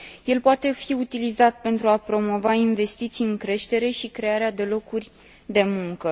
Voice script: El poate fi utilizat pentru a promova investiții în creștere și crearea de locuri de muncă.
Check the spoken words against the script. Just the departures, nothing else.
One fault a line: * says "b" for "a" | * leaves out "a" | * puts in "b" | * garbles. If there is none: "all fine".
all fine